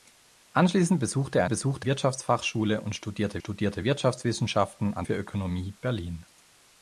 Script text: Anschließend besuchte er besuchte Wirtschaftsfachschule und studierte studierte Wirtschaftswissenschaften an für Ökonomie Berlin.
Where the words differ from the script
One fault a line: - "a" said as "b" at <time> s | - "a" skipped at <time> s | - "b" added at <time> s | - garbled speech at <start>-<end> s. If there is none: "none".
none